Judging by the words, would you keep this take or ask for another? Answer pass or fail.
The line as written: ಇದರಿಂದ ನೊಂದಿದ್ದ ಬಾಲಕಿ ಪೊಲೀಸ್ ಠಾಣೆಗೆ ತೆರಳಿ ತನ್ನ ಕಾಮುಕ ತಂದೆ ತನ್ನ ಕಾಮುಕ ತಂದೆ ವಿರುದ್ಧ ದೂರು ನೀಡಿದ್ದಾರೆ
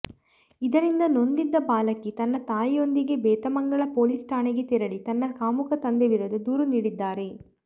fail